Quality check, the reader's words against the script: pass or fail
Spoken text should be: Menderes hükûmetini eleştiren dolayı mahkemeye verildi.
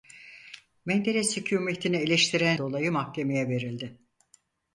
pass